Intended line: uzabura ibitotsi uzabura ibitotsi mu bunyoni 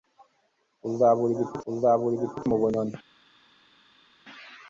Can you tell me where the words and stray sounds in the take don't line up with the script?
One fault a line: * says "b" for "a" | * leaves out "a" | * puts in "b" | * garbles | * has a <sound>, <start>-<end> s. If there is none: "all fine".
all fine